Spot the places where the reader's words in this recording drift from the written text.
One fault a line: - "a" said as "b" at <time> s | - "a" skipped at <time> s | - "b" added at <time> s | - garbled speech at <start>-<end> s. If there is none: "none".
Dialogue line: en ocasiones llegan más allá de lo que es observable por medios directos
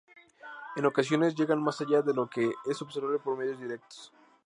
none